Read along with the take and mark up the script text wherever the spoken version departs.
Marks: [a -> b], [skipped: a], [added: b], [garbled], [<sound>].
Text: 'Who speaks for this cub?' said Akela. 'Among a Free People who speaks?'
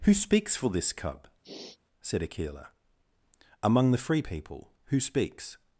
'Who speaks for this cub?' [sniff] said Akela. 'Among [a -> the] Free People who speaks?'